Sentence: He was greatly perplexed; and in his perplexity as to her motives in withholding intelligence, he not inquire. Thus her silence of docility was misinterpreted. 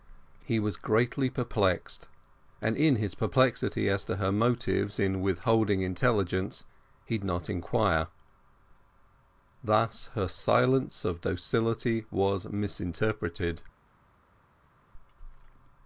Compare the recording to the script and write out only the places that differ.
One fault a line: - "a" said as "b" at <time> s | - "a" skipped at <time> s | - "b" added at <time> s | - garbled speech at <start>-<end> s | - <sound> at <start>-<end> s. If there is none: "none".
none